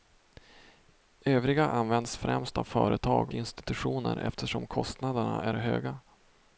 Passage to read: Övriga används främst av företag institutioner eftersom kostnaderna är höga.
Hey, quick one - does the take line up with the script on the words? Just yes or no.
yes